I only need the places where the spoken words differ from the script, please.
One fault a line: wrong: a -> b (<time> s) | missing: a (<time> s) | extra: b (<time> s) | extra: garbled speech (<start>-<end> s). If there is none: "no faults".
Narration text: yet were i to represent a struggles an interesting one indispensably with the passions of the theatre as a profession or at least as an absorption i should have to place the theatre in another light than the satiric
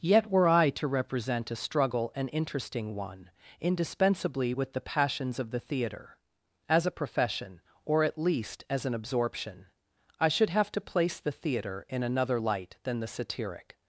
wrong: struggles -> struggle (1.6 s)